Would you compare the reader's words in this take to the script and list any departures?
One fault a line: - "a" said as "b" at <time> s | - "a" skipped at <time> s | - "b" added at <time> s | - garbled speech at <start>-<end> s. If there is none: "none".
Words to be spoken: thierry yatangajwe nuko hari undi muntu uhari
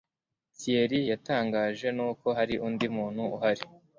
none